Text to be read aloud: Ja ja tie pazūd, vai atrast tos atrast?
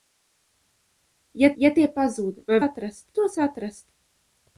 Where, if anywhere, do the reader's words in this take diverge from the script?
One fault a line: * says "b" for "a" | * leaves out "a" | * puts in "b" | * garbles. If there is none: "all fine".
all fine